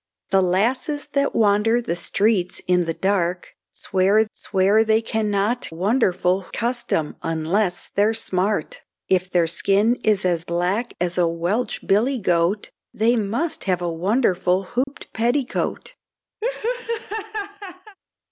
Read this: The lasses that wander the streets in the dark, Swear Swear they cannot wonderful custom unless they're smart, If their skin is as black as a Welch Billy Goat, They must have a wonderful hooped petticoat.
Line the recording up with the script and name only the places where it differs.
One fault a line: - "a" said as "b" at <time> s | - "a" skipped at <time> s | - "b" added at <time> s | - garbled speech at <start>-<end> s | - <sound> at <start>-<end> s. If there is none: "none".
- dropout at 14.8-14.9 s
- laugh at 16.4-18.0 s